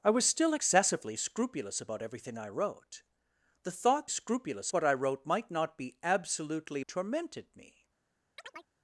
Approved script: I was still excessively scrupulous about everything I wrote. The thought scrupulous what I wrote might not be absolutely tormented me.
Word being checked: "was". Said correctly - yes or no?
yes